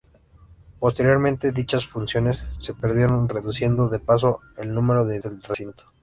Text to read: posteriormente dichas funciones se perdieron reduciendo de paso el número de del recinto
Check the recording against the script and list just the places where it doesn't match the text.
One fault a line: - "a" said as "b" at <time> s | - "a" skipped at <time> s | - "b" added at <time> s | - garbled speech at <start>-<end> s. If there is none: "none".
none